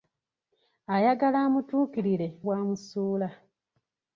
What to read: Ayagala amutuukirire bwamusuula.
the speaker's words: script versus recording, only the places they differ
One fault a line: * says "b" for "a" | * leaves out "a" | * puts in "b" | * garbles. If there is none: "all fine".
all fine